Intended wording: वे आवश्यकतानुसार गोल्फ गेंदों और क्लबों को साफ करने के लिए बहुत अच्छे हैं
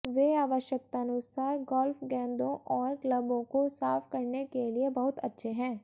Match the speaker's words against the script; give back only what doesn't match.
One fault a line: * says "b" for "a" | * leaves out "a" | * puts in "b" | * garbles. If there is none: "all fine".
all fine